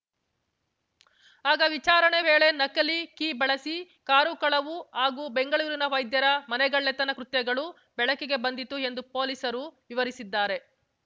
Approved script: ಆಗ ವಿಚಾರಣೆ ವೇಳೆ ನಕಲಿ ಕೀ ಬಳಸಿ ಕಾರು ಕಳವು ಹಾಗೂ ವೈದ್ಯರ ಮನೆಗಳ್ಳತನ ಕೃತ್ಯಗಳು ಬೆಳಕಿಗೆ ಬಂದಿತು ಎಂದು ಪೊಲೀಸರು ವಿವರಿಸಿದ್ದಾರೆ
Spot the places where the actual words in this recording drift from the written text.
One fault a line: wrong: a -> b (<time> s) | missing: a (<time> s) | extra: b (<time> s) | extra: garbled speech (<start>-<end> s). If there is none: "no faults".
extra: ಬೆಂಗಳೂರಿನ (5.4 s)